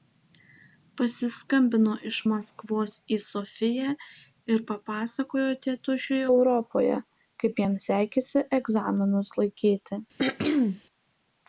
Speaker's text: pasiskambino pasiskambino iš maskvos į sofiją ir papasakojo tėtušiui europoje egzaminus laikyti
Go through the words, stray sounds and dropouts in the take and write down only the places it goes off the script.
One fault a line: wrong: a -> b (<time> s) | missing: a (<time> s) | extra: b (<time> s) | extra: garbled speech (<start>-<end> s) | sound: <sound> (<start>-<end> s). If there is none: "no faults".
missing: pasiskambino (1.9 s)
extra: kaip jam sekėsi (7.4 s)
sound: throat clearing (10.2-10.8 s)